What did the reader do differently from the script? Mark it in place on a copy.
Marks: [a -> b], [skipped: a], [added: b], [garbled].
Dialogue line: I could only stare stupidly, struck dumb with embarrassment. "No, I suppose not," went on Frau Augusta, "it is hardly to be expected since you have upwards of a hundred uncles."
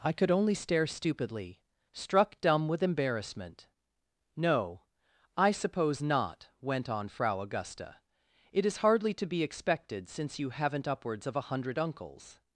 I could only stare stupidly, struck dumb with embarrassment. "No, I suppose not," went on Frau Augusta, "it is hardly to be expected since you [have -> haven't] upwards of a hundred uncles."